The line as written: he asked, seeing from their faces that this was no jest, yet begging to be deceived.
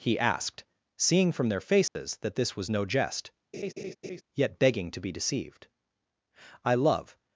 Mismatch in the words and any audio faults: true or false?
true